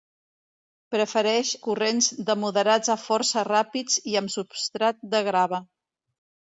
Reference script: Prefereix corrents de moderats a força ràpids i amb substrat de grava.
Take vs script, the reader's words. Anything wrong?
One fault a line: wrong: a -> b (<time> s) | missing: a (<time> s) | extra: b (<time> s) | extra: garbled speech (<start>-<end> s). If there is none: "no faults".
no faults